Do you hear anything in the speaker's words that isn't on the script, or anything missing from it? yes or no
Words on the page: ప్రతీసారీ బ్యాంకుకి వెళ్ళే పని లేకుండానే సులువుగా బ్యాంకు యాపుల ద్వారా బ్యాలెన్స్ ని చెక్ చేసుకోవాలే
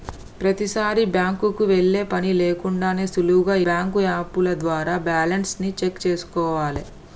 no